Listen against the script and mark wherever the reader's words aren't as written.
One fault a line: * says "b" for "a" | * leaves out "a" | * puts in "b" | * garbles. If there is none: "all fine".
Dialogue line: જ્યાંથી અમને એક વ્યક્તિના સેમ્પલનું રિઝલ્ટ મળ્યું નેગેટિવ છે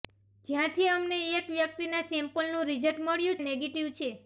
all fine